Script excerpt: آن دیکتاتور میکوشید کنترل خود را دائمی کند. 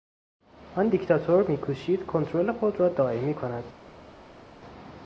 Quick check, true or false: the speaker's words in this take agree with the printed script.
true